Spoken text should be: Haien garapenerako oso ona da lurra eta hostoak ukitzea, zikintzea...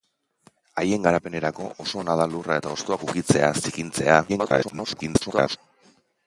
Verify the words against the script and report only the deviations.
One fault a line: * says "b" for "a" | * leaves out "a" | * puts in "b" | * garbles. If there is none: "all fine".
* garbles